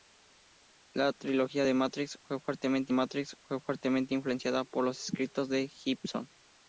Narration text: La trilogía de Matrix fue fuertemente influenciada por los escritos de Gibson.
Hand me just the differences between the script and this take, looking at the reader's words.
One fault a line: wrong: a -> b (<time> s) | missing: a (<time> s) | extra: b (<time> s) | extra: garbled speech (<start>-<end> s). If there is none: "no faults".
extra: Matrix fue fuertemente (2.9 s)